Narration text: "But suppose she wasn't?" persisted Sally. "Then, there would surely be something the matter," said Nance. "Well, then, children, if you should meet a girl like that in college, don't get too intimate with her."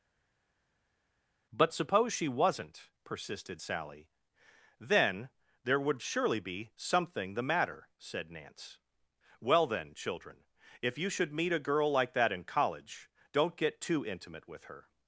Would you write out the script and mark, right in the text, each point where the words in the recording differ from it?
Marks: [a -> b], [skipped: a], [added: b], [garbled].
"But suppose she wasn't?" persisted Sally. "Then, there would surely be something the matter," said Nance. "Well, then, children, if you should meet a girl like that in college, don't get too intimate with her."